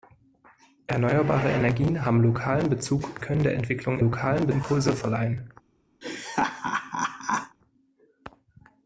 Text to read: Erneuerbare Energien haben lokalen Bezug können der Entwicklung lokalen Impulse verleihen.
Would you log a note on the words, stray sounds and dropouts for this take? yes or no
yes